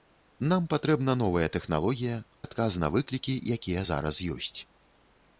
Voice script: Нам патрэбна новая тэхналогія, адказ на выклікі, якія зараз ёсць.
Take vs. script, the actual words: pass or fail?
pass